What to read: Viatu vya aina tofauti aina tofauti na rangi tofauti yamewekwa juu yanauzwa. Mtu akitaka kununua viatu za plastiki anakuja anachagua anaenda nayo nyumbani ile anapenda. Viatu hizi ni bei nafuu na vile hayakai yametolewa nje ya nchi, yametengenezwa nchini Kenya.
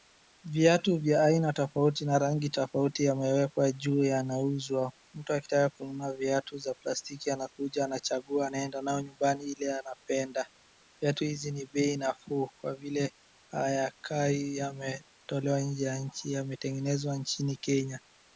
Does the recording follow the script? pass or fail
fail